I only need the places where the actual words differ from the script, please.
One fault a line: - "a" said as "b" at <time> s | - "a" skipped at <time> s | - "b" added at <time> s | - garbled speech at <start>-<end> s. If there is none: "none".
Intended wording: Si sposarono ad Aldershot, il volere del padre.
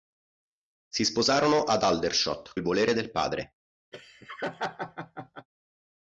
none